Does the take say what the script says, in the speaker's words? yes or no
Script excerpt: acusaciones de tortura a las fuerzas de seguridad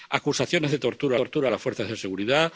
no